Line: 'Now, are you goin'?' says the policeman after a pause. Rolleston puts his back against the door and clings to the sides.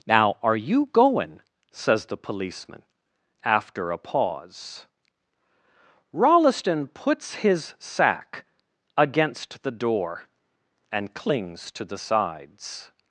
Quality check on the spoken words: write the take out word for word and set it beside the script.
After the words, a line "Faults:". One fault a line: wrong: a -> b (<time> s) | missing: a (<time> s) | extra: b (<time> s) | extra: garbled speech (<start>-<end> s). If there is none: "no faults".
'Now, are you goin'?' says the policeman after a pause. Rolleston puts his sack against the door and clings to the sides.
Faults:
wrong: back -> sack (7.8 s)